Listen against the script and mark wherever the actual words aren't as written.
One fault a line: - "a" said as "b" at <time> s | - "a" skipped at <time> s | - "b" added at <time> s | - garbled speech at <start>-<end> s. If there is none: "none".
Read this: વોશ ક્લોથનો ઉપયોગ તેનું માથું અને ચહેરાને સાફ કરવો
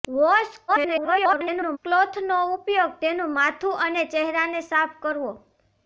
- garbled speech at 0.7-1.8 s